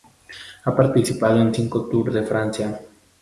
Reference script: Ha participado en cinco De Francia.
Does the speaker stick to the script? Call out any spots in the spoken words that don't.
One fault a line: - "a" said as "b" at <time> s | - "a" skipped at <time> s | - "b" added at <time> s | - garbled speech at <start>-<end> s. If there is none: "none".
- "Tour" added at 1.9 s